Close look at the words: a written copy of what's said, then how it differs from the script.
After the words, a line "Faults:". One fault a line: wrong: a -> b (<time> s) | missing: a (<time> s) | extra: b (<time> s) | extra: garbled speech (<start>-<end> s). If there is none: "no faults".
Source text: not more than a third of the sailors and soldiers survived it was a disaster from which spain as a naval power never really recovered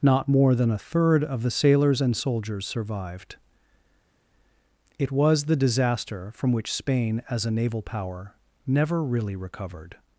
not more than a third of the sailors and soldiers survived it was the disaster from which spain as a naval power never really recovered
Faults:
wrong: a -> the (5.4 s)